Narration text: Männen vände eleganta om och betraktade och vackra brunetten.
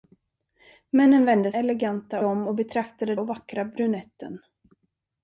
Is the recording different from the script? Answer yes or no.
no